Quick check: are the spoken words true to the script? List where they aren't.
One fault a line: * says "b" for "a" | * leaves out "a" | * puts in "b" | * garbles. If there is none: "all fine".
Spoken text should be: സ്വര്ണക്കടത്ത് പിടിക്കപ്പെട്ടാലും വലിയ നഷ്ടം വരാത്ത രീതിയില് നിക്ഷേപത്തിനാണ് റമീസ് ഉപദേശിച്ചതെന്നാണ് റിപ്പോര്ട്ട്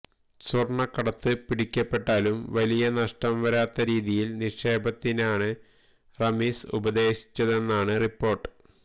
all fine